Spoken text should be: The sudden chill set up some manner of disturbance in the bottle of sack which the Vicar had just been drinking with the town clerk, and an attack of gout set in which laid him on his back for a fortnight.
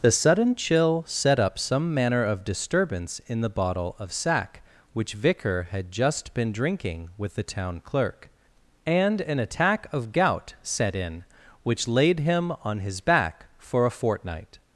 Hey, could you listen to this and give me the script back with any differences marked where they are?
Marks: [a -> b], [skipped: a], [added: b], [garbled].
The sudden chill set up some manner of disturbance in the bottle of sack which [skipped: the] Vicar had just been drinking with the town clerk, and an attack of gout set in which laid him on his back for a fortnight.